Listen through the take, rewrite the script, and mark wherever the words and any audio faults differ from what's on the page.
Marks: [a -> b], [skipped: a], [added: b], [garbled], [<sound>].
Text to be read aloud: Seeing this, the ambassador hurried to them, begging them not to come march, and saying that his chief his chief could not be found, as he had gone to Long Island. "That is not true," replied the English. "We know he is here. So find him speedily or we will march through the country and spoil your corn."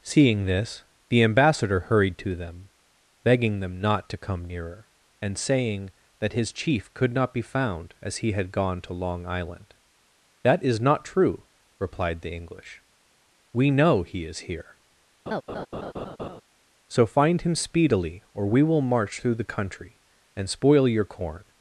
Seeing this, the ambassador hurried to them, begging them not to come [march, -> nearer] and saying that his chief [skipped: his chief] could not be found, as he had gone to Long Island. "That is not true," replied the English. "We know he is here. [laugh] So find him speedily or we will march through the country and spoil your corn."